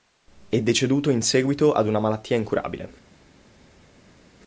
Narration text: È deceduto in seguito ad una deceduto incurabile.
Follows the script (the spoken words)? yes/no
no